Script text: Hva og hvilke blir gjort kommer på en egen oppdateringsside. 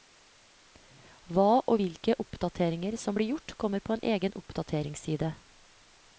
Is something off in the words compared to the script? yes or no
yes